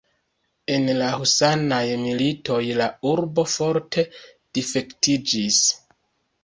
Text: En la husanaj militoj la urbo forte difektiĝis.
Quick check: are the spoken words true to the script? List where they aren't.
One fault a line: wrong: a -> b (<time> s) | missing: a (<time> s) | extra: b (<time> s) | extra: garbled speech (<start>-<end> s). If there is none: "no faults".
no faults